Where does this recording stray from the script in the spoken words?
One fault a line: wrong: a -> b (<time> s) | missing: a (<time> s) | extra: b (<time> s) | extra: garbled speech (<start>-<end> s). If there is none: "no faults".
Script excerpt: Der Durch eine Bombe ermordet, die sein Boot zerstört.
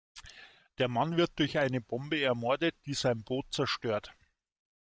extra: Mann wird (0.9 s)